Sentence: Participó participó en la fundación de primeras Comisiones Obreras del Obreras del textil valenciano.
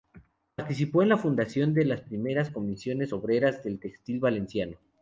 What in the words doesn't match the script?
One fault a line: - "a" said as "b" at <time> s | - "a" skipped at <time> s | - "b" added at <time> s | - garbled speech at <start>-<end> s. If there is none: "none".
- "participó" skipped at 1.0 s
- "las" added at 1.9 s
- "Obreras del" skipped at 3.8 s